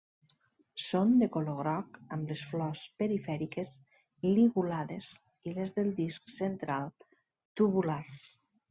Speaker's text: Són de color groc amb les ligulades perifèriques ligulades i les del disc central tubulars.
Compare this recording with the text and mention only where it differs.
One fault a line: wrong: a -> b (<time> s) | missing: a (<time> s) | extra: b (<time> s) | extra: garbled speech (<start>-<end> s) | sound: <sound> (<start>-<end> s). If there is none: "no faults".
wrong: ligulades -> flors (2.5 s)